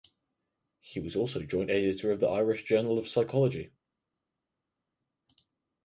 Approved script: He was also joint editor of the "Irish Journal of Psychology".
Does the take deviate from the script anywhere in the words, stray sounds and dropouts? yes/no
no